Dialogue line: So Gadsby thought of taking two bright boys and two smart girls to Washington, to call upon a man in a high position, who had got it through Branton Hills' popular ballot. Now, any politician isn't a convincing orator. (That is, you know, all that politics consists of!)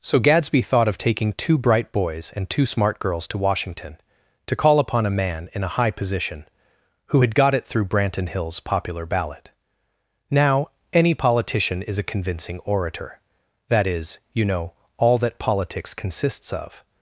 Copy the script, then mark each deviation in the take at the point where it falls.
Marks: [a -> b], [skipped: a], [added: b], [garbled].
So Gadsby thought of taking two bright boys and two smart girls to Washington, to call upon a man in a high position, who had got it through Branton Hills' popular ballot. Now, any politician [isn't -> is] a convincing orator. (That is, you know, all that politics consists of!)